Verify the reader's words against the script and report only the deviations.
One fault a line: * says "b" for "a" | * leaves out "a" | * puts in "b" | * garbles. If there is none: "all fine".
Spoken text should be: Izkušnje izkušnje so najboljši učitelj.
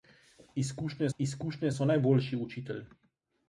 all fine